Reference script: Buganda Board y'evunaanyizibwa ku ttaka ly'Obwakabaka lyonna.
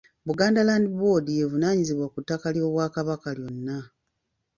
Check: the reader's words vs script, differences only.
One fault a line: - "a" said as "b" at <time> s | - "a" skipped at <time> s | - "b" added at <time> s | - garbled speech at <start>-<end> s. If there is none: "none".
- "Land" added at 0.7 s